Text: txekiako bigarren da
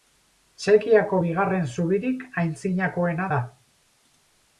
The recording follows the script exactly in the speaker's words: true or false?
false